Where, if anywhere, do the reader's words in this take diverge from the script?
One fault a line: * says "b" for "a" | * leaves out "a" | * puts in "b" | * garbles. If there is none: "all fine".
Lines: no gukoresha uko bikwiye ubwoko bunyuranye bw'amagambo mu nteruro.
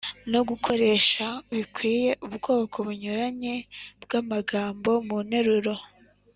* leaves out "uko"